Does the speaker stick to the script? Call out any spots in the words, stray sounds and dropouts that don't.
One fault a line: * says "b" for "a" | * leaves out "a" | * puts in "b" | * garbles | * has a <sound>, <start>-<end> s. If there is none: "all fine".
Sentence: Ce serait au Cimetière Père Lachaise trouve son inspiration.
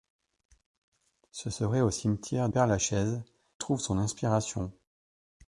all fine